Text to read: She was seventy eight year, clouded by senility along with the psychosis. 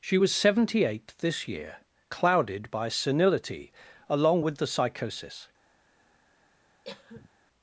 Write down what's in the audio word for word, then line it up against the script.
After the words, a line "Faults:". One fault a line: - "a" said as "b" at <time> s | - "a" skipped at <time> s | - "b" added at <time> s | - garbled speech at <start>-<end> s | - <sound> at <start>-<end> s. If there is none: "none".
She was seventy eight this year, clouded by senility along with the psychosis.
Faults:
- "this" added at 1.2 s
- cough at 6.8-7.3 s